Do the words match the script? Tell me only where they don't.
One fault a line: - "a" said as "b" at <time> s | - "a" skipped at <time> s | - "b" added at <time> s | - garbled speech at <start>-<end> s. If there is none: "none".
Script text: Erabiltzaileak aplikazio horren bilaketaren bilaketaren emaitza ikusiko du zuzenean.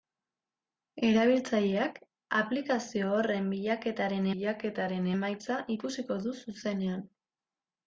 none